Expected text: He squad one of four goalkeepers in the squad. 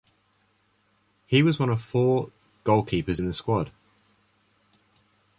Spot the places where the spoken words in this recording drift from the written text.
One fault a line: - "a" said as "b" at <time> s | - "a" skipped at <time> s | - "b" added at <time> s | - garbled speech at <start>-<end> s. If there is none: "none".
- "squad" said as "was" at 1.4 s